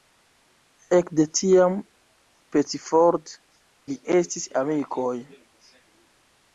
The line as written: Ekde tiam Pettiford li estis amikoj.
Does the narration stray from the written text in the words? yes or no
no